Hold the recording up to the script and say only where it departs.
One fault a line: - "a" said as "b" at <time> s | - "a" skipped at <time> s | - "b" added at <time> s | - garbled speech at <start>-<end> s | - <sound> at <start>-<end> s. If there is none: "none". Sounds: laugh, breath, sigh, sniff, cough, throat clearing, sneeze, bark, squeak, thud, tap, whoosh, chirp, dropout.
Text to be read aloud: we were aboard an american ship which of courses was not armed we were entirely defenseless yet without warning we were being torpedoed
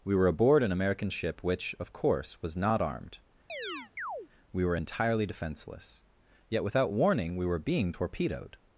- "courses" said as "course" at 1.9 s
- chirp at 3.5-4.3 s